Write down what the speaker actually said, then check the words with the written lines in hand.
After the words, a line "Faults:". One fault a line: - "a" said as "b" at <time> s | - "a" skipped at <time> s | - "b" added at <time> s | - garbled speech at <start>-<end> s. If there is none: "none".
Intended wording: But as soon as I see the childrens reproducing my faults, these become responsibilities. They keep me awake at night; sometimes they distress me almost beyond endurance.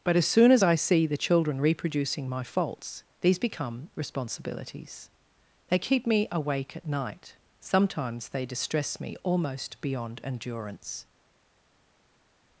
But as soon as I see the children reproducing my faults, these become responsibilities. They keep me awake at night; sometimes they distress me almost beyond endurance.
Faults:
- "childrens" said as "children" at 1.2 s